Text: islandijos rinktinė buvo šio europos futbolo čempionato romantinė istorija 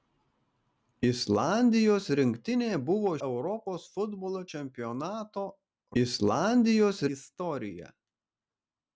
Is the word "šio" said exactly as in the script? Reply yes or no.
no